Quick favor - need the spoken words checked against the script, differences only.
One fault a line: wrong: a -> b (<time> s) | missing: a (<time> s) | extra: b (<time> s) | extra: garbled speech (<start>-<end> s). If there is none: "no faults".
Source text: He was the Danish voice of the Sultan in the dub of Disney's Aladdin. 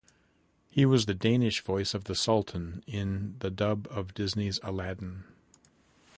no faults